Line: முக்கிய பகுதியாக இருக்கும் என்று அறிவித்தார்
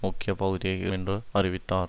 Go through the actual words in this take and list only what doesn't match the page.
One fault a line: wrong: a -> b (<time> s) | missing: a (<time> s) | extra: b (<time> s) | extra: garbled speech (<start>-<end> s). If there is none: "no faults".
missing: இருக்கும் (0.9 s)